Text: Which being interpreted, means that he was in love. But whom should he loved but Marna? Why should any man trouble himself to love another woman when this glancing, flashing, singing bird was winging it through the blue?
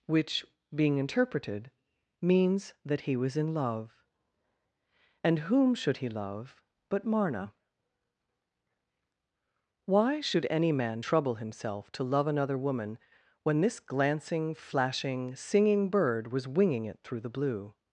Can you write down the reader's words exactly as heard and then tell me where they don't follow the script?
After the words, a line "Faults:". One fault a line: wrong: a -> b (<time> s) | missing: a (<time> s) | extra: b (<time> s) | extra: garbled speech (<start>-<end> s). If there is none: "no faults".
Which being interpreted, means that he was in love. And whom should he love but Marna? Why should any man trouble himself to love another woman when this glancing, flashing, singing bird was winging it through the blue?
Faults:
wrong: But -> And (5.2 s)
wrong: loved -> love (6.1 s)